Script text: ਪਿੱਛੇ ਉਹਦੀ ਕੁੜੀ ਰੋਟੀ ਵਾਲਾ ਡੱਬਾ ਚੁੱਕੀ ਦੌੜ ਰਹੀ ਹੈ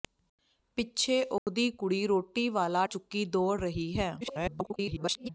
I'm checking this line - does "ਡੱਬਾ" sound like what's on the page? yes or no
no